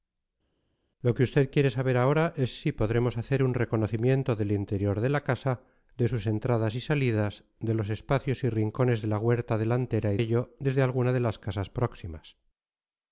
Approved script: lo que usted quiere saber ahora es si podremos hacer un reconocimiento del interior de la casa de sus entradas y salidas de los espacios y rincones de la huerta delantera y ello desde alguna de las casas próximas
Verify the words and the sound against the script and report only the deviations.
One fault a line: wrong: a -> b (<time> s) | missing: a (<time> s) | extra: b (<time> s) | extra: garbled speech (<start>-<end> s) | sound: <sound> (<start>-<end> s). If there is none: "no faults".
no faults